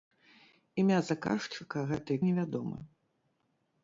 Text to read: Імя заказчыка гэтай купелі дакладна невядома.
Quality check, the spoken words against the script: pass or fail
fail